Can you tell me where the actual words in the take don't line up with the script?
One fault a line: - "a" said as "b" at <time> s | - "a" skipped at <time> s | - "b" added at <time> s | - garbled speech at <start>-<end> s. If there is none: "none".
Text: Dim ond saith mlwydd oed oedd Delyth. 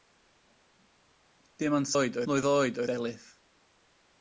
- "saith" said as "oed" at 2.0 s
- "oedd" skipped at 2.8 s